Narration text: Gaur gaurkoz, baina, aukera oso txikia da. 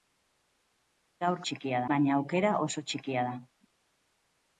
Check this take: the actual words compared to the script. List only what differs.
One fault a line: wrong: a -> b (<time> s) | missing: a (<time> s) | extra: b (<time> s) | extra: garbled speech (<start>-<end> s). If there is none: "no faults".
wrong: gaurkoz -> txikia (1.5 s)